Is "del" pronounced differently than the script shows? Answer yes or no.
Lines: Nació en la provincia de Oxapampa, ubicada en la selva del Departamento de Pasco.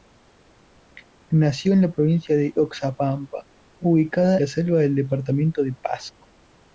no